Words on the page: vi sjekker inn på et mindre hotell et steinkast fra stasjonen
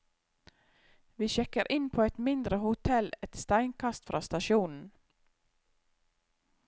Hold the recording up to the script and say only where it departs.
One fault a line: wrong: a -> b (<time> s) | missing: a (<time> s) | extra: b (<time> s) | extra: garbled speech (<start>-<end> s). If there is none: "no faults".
no faults